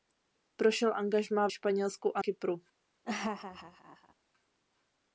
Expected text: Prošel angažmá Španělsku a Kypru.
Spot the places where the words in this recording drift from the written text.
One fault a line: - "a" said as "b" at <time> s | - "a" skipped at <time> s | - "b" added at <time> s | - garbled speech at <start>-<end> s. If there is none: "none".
none